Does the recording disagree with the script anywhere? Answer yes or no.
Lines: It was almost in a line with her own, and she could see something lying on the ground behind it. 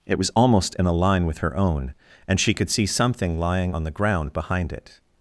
no